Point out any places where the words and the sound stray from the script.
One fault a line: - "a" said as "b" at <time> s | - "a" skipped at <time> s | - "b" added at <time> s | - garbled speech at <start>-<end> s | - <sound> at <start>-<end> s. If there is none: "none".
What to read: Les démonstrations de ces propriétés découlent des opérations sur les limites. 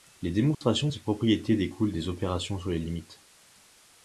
- dropout at 0.5-0.6 s